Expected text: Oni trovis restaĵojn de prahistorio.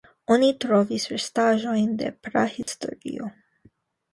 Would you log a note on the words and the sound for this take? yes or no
yes